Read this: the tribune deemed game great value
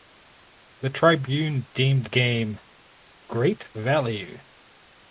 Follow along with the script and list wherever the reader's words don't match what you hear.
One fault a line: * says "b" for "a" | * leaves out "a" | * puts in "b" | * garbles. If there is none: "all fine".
all fine